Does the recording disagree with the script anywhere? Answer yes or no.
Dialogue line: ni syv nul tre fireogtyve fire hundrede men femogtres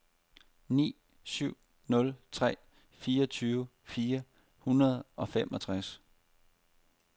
yes